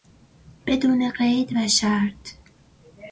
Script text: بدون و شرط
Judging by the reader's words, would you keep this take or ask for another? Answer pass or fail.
fail